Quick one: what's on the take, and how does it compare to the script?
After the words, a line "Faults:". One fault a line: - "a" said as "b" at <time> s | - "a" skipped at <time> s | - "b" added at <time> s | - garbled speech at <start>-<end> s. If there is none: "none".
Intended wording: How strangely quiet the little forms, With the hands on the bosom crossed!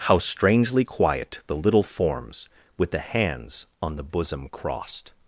How strangely quiet the little forms, With the hands on the bosom crossed!
Faults:
none